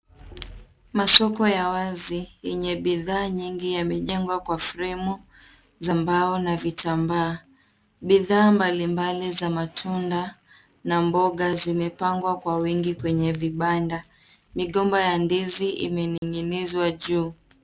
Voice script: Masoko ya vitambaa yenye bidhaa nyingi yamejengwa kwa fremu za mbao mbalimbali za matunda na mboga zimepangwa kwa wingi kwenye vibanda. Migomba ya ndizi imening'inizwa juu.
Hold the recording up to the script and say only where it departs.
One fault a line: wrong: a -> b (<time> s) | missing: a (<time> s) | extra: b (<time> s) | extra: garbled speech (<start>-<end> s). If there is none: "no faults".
wrong: vitambaa -> wazi (1.7 s)
extra: na vitambaa Bidhaa (6.4 s)